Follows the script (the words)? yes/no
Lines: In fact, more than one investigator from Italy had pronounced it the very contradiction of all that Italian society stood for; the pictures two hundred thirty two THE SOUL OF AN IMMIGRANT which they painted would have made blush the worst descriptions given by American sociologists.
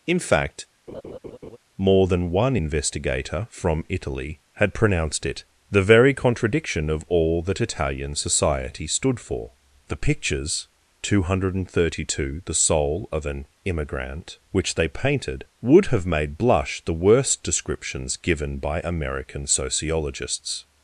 yes